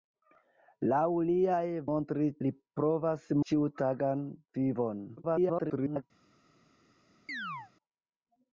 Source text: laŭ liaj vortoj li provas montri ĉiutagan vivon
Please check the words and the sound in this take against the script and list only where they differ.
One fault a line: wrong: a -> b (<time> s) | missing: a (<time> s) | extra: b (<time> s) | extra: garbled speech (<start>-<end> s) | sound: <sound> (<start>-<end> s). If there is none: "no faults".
wrong: vortoj -> montri (1.9 s)
missing: montri (3.3 s)
extra: garbled speech (5.2-6.0 s)
sound: chirp (7.3-7.7 s)